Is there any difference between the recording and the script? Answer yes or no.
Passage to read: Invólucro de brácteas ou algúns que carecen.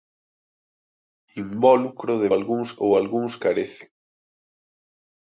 yes